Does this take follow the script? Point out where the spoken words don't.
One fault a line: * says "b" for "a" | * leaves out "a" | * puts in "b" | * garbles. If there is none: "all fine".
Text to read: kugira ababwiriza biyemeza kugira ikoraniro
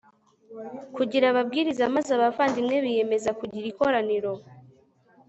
* puts in "maze abavandimwe"